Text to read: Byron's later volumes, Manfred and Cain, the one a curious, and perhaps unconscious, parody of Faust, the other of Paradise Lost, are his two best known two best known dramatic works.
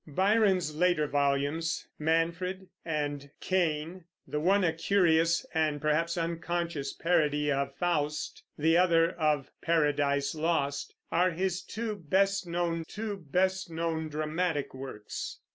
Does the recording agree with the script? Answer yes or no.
yes